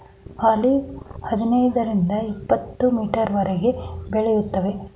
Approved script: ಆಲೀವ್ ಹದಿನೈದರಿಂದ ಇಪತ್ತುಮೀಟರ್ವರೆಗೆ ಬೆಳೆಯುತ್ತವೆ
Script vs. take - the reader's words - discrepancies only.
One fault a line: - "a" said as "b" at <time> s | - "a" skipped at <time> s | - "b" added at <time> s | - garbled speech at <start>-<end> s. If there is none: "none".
none